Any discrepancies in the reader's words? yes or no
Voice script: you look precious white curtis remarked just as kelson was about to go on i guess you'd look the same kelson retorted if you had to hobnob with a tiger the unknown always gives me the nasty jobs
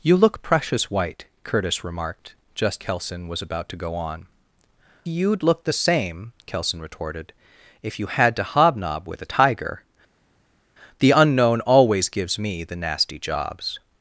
yes